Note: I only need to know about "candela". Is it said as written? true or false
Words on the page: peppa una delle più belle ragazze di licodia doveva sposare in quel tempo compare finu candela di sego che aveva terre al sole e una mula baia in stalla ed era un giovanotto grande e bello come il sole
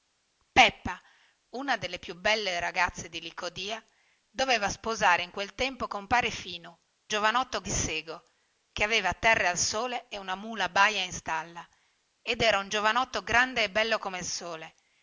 false